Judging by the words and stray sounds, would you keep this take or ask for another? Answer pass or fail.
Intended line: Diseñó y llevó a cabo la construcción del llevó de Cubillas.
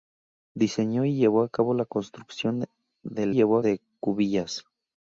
pass